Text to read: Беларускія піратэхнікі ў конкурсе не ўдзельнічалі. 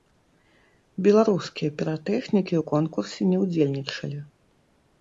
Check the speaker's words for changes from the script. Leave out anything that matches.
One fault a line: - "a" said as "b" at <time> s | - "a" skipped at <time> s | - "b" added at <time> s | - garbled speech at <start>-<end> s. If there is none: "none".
none